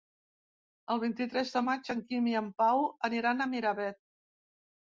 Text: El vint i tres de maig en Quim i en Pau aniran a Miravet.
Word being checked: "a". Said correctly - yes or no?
yes